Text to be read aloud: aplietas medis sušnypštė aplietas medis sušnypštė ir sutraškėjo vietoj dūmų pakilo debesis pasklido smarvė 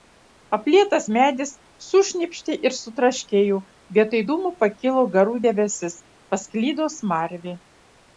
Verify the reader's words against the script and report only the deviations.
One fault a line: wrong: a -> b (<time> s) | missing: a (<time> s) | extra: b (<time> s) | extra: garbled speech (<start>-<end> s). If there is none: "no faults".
missing: aplietas medis sušnypštė (2.5 s)
extra: garų (5.2 s)